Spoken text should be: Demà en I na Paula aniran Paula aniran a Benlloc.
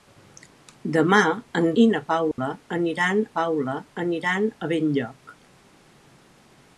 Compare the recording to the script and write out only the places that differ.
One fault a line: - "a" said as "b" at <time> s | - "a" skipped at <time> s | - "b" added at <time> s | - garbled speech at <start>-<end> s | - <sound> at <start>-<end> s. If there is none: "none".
- dropout at 2.3-2.4 s